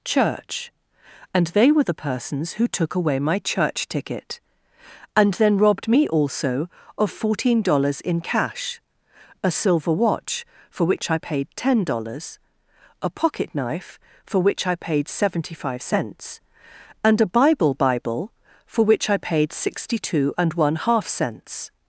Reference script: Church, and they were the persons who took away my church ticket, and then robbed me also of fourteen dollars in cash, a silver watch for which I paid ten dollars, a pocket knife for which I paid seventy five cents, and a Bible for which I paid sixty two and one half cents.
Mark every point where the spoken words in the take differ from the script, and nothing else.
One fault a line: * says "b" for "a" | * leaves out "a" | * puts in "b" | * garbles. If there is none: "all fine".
* puts in "Bible"